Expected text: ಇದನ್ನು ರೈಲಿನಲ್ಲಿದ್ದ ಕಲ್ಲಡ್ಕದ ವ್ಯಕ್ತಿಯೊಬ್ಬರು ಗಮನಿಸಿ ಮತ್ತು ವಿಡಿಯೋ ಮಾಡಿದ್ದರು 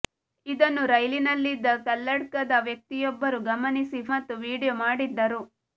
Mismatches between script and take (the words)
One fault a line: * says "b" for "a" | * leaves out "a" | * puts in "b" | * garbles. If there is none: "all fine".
all fine